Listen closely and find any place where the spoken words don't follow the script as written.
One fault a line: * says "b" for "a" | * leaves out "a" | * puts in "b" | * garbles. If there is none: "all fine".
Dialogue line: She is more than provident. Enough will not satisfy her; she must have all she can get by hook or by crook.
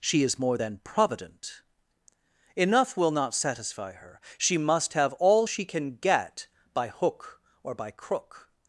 all fine